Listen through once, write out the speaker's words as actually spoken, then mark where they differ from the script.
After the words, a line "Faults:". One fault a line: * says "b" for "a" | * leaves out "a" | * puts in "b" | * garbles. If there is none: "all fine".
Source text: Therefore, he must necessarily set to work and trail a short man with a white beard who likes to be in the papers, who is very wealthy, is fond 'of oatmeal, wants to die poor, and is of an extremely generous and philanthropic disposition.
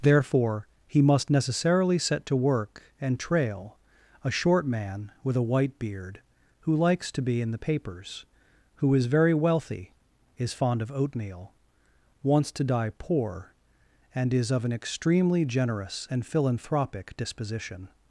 Therefore, he must necessarily set to work and trail a short man with a white beard who likes to be in the papers, who is very wealthy, is fond 'of oatmeal, wants to die poor, and is of an extremely generous and philanthropic disposition.
Faults:
all fine